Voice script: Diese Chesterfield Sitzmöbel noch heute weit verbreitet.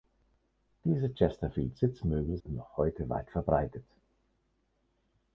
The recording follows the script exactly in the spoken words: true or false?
true